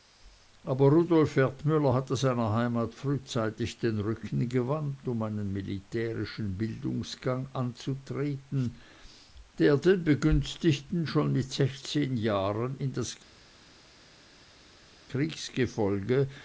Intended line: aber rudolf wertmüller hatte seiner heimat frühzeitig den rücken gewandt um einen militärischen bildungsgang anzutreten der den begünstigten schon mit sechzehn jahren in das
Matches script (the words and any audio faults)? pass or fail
pass